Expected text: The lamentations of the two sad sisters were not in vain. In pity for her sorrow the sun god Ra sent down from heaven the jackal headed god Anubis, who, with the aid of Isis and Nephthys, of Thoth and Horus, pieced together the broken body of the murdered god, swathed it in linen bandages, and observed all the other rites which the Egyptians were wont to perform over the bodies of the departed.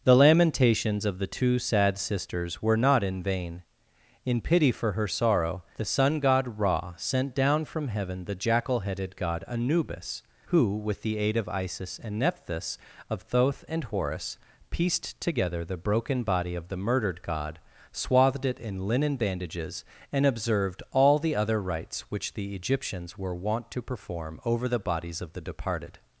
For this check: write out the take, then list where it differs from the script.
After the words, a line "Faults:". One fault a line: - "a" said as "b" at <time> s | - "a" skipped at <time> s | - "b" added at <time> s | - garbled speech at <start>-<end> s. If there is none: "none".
The lamentations of the two sad sisters were not in vain. In pity for her sorrow the sun god Ra sent down from heaven the jackal headed god Anubis, who, with the aid of Isis and Nephthys, of Thoth and Horus, pieced together the broken body of the murdered god, swathed it in linen bandages, and observed all the other rites which the Egyptians were wont to perform over the bodies of the departed.
Faults:
none